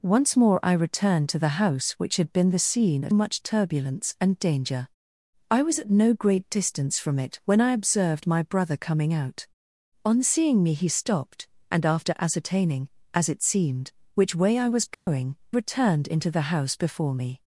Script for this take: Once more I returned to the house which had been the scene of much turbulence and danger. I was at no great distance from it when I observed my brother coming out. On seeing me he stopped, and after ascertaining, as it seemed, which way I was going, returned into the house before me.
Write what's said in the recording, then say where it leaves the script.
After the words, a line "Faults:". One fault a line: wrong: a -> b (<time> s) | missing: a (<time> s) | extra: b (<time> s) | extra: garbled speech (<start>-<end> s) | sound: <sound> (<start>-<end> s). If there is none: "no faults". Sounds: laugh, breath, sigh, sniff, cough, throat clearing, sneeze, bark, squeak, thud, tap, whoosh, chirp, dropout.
Once more I returned to the house which had been the scene of much turbulence and danger. I was at no great distance from it when I observed my brother coming out. On seeing me he stopped, and after ascertaining, as it seemed, which way I was going, returned into the house before me.
Faults:
sound: dropout (14.9-15.1 s)